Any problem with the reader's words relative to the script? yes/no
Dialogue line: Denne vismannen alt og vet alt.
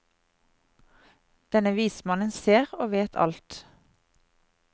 yes